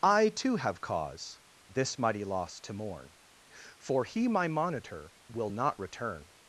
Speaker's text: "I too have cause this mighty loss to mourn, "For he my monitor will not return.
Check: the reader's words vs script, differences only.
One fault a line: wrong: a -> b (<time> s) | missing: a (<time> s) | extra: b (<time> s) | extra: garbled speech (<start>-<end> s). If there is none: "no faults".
no faults